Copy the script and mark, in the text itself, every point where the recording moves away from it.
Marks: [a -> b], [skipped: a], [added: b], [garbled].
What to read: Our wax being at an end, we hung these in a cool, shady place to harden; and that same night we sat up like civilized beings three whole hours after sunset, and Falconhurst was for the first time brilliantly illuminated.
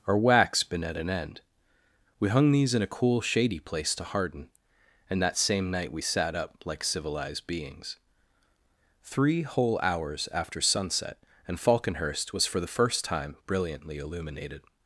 Our wax [being -> been] at an end, we hung these in a cool, shady place to harden; and that same night we sat up like civilized beings three whole hours after sunset, and Falconhurst was for the first time brilliantly illuminated.